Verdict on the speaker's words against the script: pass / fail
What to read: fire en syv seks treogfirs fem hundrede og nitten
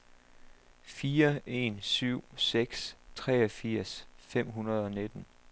pass